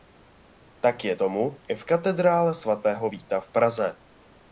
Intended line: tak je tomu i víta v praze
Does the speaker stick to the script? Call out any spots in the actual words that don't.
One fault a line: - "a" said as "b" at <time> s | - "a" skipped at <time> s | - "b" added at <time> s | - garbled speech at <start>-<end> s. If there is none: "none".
- "v katedrále svatého" added at 1.7 s